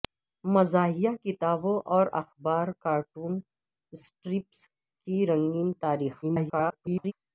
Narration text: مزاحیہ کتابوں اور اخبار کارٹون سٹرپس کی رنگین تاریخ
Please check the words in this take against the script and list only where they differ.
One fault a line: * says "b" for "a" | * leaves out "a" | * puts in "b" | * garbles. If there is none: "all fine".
* garbles